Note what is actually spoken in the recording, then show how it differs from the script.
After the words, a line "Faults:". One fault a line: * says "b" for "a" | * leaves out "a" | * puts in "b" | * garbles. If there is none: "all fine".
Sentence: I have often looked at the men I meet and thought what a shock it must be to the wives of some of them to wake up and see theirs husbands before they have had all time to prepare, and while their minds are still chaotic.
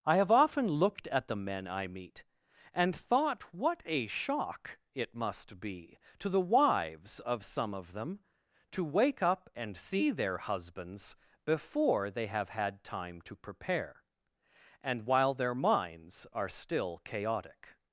I have often looked at the men I meet and thought what a shock it must be to the wives of some of them to wake up and see their husbands before they have had time to prepare, and while their minds are still chaotic.
Faults:
* says "their" for "theirs"
* leaves out "all"